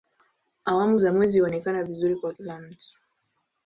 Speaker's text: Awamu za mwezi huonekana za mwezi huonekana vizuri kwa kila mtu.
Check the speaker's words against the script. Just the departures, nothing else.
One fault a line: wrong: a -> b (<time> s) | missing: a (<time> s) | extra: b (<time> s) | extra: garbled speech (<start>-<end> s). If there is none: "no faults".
missing: za mwezi huonekana (1.8 s)